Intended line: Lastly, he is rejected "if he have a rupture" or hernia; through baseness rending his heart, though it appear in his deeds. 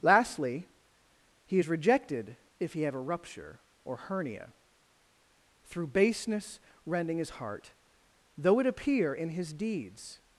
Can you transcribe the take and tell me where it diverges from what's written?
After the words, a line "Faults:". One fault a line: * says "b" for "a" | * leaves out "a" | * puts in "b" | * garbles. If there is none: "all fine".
Lastly, he is rejected "if he have a rupture" or hernia; through baseness rending his heart, though it appear in his deeds.
Faults:
all fine